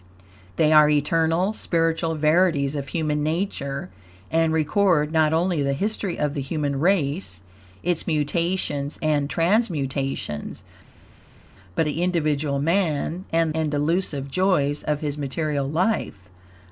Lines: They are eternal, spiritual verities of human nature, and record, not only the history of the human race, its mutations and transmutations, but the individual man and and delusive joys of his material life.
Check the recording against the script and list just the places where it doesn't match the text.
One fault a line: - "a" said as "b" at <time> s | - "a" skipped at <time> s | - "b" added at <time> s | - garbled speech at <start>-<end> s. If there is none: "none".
none